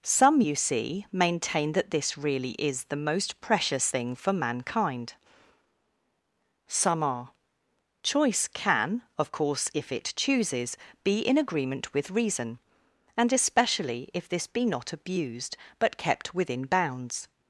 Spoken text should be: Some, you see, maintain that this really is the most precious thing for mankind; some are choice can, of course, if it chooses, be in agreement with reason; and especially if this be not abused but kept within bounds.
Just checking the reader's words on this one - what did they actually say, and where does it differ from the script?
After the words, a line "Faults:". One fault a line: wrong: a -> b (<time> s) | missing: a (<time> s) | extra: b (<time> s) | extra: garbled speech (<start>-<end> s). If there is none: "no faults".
Some, you see, maintain that this really is the most precious thing for mankind; some are choice can, of course, if it chooses, be in agreement with reason; and especially if this be not abused but kept within bounds.
Faults:
no faults